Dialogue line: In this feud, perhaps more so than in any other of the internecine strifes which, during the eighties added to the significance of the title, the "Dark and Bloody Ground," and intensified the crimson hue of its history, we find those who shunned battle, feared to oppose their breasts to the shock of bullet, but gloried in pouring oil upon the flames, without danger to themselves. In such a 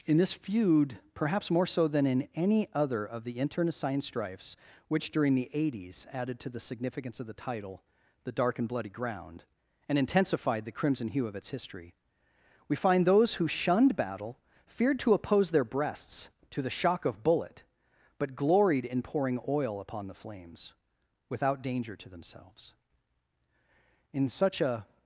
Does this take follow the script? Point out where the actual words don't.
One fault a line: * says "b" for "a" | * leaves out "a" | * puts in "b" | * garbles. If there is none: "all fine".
all fine